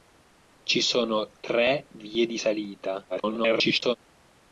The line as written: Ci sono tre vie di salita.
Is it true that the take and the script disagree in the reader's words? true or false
true